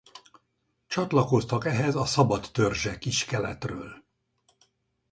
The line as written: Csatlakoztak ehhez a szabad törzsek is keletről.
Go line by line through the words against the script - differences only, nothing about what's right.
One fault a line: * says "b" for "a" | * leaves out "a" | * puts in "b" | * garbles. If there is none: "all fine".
all fine